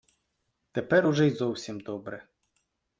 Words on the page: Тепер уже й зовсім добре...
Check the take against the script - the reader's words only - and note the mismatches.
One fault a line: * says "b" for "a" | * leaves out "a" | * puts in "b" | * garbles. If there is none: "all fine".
all fine